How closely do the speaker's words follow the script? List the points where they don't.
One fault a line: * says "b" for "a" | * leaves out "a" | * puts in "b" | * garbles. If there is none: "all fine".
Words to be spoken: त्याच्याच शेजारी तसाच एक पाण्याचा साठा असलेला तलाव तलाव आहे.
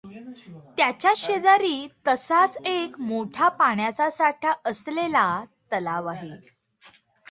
* puts in "मोठा"
* leaves out "तलाव"